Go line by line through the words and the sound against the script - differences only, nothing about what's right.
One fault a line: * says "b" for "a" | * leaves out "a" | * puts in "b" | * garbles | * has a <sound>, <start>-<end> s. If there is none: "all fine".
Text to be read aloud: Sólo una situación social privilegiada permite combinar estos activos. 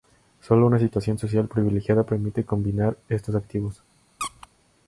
* has a squeak, 4.2-4.5 s